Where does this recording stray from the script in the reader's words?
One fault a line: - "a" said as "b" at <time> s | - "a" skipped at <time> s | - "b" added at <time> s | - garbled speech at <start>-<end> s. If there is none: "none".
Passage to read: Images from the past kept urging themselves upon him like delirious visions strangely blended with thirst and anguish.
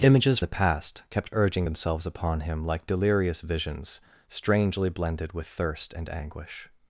- "from" skipped at 0.4 s